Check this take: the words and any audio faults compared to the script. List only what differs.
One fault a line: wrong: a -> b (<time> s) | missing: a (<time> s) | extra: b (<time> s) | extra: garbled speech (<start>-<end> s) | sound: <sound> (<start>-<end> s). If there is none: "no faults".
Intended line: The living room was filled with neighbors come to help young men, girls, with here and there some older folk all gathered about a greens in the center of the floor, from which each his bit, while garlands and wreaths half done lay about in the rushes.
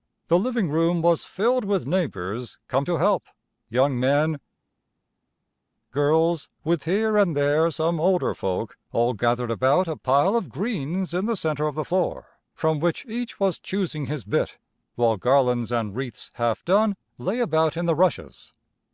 extra: pile of (10.0 s)
extra: was choosing (13.4 s)